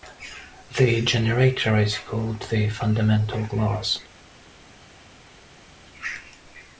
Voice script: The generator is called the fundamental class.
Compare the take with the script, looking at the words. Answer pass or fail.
pass